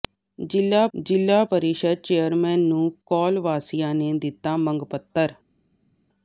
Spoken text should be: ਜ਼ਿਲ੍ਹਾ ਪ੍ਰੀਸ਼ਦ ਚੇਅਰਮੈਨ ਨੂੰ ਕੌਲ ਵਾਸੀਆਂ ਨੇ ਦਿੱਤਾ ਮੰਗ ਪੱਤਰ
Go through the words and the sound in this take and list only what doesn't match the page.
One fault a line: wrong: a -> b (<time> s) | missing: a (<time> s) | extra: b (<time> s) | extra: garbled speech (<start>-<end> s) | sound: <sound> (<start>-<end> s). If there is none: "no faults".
extra: ਜ਼ਿਲ੍ਹਾ (0.9 s)